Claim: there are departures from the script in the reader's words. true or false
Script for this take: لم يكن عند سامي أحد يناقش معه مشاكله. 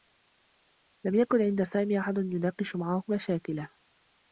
false